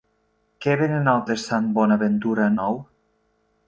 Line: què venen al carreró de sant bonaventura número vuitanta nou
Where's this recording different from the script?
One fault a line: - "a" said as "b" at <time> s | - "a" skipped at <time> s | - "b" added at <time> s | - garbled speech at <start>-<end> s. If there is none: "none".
- "carreró" skipped at 1.2 s
- "número vuitanta" skipped at 2.5 s